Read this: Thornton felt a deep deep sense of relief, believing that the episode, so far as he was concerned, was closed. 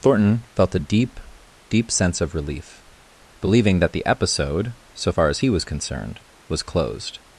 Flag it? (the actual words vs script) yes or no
no